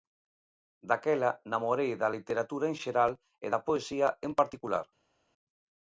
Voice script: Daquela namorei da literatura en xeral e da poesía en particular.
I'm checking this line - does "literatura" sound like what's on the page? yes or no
yes